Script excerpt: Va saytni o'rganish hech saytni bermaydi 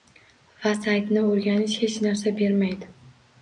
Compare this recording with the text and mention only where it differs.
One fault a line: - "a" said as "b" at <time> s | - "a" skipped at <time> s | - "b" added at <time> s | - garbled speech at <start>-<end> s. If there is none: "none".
- "saytni" said as "narsa" at 2.1 s